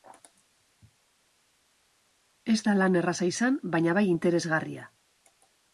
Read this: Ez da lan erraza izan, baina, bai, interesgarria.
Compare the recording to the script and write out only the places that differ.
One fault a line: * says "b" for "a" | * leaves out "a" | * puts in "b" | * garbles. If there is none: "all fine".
all fine